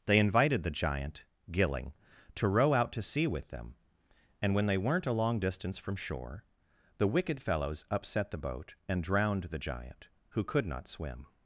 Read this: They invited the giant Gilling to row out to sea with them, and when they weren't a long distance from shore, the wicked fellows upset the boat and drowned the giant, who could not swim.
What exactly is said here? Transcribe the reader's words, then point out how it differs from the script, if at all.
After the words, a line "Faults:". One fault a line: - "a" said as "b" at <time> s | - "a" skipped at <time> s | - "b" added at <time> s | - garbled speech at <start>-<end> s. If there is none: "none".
They invited the giant Gilling to row out to sea with them, and when they weren't a long distance from shore, the wicked fellows upset the boat and drowned the giant, who could not swim.
Faults:
none